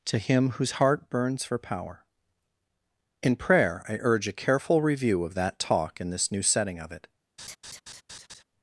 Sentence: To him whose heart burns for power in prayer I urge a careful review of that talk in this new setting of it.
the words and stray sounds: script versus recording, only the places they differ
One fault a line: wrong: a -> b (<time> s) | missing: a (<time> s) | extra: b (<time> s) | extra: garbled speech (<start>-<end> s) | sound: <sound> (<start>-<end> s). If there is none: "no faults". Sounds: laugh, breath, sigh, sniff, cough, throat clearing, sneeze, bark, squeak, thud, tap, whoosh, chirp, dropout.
sound: laugh (7.4-8.4 s)